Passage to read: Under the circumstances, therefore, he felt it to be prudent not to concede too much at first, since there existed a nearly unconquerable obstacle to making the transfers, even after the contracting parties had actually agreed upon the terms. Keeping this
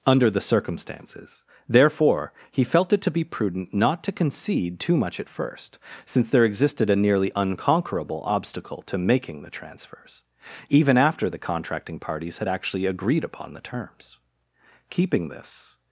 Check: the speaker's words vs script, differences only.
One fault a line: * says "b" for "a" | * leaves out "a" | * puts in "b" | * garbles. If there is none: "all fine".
all fine